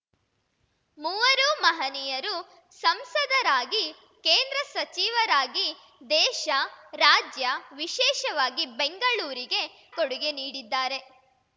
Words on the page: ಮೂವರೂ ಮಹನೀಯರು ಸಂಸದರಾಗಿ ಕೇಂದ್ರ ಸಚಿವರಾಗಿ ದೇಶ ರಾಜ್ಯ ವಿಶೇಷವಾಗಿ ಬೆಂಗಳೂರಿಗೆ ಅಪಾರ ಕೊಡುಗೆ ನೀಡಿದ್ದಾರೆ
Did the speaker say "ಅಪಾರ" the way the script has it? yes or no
no